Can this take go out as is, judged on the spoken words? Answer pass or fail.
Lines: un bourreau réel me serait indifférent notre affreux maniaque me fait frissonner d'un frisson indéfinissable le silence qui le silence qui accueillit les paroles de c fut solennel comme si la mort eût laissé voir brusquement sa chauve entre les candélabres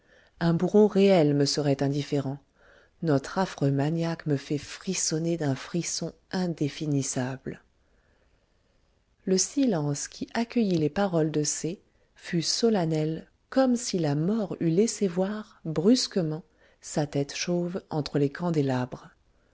fail